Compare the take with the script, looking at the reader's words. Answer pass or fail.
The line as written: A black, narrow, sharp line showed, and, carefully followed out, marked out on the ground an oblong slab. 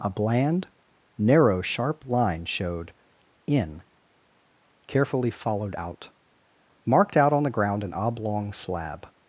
fail